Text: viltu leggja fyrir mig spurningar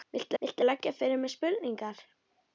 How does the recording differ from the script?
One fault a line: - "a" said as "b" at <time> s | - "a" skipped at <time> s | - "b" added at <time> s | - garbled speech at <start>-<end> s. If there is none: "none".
- "viltu" added at 0.4 s